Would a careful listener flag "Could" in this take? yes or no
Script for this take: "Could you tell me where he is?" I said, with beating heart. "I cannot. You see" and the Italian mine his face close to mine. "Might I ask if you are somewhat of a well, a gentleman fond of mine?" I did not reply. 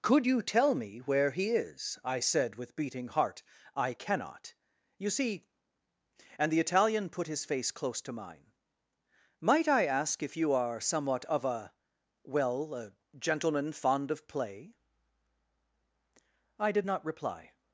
no